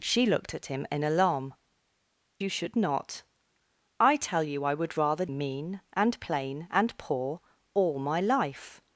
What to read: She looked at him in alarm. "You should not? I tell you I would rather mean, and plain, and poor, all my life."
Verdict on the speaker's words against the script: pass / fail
pass